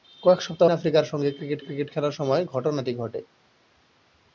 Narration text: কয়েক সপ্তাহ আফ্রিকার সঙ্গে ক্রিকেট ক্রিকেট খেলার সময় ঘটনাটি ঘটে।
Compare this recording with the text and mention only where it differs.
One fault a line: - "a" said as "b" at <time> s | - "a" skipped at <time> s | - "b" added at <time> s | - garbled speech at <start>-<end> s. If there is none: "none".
none